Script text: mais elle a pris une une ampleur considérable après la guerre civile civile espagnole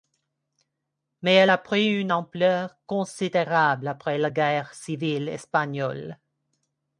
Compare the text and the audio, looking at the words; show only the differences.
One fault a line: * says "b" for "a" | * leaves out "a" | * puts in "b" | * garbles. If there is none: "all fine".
* leaves out "une"
* leaves out "civile"